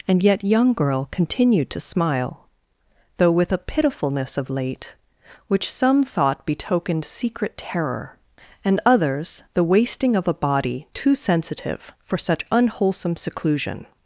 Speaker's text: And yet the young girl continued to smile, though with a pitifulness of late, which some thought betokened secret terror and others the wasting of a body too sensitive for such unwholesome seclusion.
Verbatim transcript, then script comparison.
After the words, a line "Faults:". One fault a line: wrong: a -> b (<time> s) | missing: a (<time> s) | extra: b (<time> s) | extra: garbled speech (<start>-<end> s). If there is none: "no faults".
And yet young girl continued to smile, though with a pitifulness of late, which some thought betokened secret terror and others the wasting of a body too sensitive for such unwholesome seclusion.
Faults:
missing: the (0.4 s)